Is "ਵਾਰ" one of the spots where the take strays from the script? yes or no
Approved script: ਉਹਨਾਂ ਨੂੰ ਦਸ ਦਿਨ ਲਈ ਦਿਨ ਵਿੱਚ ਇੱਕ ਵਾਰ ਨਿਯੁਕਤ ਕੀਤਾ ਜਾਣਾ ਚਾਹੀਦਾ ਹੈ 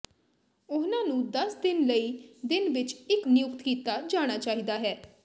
yes